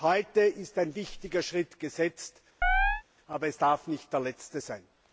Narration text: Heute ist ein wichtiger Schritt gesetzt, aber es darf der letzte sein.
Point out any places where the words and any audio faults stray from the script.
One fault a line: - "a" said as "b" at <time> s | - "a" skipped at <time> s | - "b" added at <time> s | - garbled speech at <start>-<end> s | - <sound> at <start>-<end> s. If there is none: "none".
- chirp at 2.6-3.0 s
- "nicht" added at 3.9 s